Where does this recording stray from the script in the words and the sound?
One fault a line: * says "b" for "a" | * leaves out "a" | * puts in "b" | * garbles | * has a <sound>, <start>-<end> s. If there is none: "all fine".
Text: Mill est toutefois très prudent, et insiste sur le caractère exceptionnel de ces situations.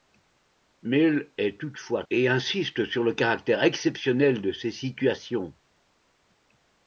* leaves out "très prudent"